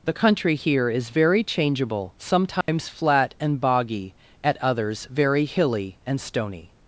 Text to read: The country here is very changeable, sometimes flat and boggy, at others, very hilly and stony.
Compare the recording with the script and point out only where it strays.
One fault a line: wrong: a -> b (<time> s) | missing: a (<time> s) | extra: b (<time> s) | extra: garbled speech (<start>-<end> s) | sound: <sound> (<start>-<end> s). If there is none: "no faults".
sound: dropout (2.6-2.7 s)